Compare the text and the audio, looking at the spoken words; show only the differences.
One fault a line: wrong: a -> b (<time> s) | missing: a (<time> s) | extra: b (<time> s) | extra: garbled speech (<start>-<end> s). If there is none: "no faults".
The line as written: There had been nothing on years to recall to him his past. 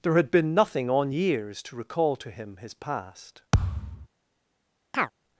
no faults